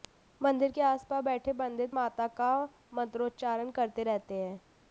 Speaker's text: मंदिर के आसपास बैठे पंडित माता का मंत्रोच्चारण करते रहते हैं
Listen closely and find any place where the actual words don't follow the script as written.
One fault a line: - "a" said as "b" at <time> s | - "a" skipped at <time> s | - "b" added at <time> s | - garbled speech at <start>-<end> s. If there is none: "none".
none